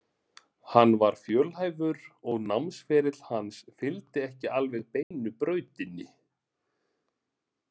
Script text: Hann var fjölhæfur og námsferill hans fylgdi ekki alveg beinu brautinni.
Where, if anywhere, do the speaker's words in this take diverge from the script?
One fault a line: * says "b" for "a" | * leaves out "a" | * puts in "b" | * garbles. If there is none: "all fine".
all fine